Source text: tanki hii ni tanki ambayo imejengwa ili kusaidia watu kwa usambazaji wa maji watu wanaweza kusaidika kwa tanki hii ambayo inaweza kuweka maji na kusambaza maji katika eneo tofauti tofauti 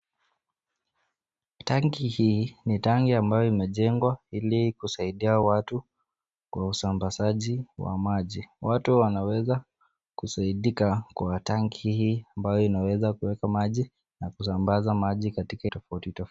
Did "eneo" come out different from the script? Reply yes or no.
yes